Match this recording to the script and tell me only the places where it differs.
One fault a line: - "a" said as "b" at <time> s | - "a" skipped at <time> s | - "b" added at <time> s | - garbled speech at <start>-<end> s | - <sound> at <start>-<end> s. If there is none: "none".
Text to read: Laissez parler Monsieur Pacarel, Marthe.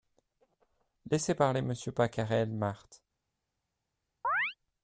- chirp at 4.2-4.5 s